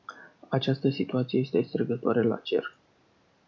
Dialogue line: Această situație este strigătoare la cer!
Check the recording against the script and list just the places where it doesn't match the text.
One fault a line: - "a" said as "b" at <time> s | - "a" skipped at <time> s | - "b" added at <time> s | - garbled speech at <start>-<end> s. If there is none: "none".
none